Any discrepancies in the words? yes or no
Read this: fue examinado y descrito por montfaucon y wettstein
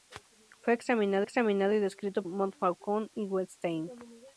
yes